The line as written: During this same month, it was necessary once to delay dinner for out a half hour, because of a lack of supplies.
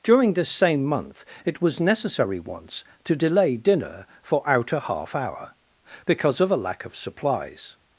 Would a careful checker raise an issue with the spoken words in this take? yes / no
no